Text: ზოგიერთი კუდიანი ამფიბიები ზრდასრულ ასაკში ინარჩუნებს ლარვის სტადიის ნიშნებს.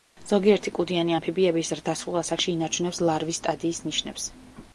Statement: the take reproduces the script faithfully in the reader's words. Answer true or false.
true